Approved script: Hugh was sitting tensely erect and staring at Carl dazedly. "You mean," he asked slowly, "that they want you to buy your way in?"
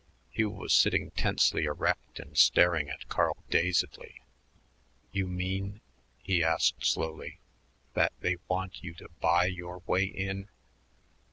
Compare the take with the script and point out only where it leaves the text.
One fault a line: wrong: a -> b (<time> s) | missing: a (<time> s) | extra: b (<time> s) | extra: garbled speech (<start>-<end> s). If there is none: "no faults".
no faults